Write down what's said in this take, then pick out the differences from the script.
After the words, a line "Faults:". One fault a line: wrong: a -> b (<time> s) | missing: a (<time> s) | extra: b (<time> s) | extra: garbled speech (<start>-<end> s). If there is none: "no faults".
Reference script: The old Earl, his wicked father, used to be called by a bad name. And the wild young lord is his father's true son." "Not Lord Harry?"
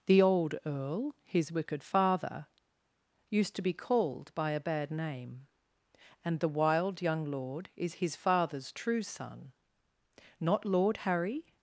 The old Earl, his wicked father, used to be called by a bad name. And the wild young lord is his father's true son." "Not Lord Harry?"
Faults:
no faults